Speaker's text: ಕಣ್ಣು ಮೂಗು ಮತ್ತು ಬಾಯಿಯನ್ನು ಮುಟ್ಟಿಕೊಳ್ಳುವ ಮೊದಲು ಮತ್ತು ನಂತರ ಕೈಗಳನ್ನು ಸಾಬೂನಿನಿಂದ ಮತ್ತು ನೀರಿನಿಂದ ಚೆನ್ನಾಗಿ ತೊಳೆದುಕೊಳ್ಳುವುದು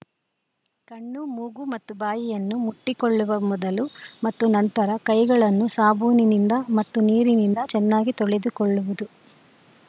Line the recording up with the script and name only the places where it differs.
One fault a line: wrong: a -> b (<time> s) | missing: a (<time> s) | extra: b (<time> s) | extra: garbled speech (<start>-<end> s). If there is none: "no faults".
no faults